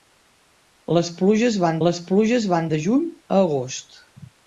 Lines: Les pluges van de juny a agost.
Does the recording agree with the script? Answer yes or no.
no